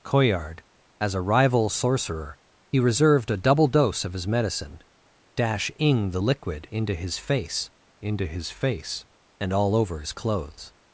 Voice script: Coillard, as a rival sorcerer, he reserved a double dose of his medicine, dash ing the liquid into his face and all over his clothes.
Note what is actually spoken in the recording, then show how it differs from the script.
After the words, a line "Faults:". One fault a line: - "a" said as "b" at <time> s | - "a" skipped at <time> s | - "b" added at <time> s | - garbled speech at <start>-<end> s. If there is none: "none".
Coillard, as a rival sorcerer, he reserved a double dose of his medicine, dash ing the liquid into his face into his face and all over his clothes.
Faults:
- "into his face" added at 8.0 s